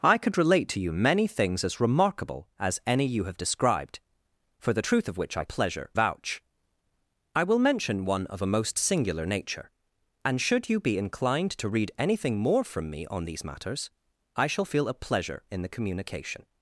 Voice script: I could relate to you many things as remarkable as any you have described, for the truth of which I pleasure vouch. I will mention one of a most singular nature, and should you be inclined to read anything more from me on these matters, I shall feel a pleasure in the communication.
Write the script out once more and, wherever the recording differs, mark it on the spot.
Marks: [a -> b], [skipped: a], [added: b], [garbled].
I could relate to you many things as remarkable as any you have described, for the truth of which I pleasure vouch. I will mention one of a most singular nature, and should you be inclined to read anything more from me on these matters, I shall feel a pleasure in the communication.